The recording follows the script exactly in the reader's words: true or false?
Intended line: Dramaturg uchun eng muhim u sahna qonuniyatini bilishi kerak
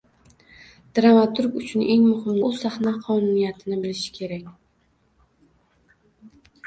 true